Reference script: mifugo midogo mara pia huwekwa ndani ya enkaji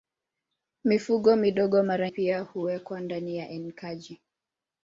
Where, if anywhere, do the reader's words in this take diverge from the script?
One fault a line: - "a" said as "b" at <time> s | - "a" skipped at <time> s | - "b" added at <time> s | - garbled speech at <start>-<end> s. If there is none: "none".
none